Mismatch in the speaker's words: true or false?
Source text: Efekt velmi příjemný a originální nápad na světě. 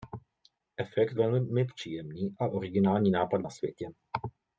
false